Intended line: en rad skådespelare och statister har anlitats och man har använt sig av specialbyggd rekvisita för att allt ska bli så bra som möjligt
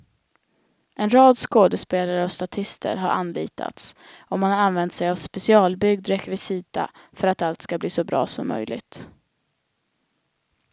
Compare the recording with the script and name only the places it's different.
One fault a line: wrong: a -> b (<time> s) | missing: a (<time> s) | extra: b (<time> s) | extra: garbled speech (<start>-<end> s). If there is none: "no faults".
no faults